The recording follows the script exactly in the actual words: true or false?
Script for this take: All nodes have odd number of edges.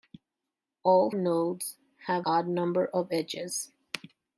true